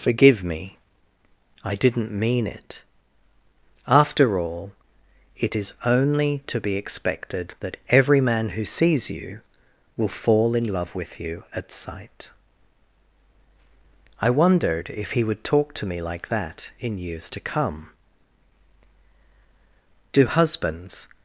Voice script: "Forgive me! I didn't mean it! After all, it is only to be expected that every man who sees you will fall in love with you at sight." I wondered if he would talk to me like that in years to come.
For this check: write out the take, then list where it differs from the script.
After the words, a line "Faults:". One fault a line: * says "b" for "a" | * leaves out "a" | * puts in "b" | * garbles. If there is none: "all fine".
"Forgive me! I didn't mean it! After all, it is only to be expected that every man who sees you will fall in love with you at sight." I wondered if he would talk to me like that in years to come. Do husbands
Faults:
* puts in "Do husbands"